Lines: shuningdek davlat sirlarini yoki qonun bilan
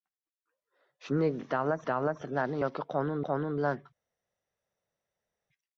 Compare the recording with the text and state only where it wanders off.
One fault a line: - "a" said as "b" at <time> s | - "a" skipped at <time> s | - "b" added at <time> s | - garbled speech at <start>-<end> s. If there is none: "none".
- "davlat" added at 1.9 s
- "qonun" added at 3.3 s